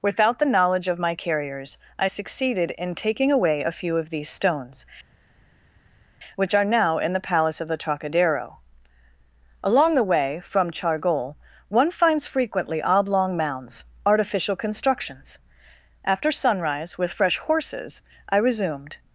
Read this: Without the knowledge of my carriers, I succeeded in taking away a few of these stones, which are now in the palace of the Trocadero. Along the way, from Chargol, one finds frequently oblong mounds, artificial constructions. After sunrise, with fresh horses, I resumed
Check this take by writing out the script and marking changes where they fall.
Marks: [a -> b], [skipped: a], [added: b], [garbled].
Without the knowledge of my carriers, I succeeded in taking away a few of these stones, which are now in the palace of the Trocadero. Along the way, from Chargol, one finds frequently oblong mounds, artificial constructions. After sunrise, with fresh horses, I resumed